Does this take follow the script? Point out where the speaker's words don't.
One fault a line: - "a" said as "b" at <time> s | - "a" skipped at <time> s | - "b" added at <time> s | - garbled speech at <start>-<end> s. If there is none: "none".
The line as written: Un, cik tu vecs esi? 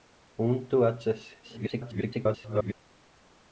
- "cik" skipped at 0.6 s
- garbled speech at 1.4-2.7 s